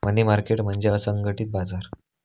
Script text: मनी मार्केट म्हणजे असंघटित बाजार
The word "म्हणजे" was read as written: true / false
true